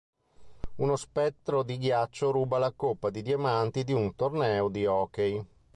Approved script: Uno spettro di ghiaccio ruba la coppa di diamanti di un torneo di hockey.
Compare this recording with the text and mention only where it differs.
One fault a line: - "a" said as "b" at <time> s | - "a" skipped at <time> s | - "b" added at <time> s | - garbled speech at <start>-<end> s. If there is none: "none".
none